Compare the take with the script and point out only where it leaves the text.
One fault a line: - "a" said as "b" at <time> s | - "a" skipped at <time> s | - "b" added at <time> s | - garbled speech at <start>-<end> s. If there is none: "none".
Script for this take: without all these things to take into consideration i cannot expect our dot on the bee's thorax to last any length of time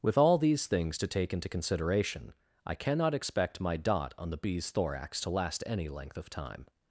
- "without" said as "with" at 0.0 s
- "our" said as "my" at 3.6 s